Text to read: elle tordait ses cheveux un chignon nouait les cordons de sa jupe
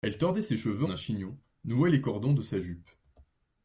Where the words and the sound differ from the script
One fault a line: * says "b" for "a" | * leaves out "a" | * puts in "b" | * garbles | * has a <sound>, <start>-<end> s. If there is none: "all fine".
all fine